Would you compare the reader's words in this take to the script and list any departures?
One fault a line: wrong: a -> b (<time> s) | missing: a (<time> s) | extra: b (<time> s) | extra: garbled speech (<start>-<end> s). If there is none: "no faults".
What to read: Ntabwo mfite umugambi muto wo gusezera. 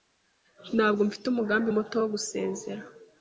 no faults